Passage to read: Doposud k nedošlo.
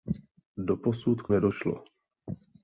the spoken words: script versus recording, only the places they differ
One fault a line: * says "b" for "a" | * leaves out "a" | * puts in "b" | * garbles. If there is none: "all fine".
all fine